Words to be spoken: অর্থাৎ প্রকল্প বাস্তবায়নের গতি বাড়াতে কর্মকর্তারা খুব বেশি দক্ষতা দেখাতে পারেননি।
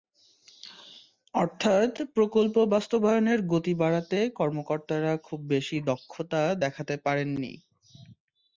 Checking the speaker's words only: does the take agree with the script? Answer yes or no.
yes